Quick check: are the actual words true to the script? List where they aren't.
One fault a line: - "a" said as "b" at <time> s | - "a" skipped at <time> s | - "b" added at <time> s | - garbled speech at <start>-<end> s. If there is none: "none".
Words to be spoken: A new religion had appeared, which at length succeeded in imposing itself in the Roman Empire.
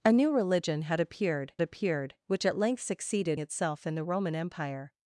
- "appeared" added at 1.6 s
- "in imposing" skipped at 3.4 s